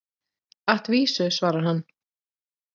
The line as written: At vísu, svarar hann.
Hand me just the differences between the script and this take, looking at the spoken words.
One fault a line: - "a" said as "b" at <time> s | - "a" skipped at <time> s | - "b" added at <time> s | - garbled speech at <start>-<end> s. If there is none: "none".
none